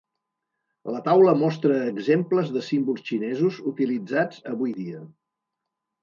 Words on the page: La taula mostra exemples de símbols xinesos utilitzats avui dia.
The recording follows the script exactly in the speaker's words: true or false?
true